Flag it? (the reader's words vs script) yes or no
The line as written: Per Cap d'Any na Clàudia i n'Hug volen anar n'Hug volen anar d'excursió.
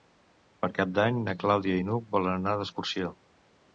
yes